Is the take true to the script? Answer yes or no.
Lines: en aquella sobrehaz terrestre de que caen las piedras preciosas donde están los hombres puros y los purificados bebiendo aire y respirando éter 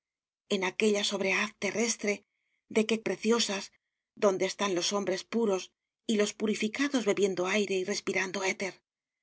no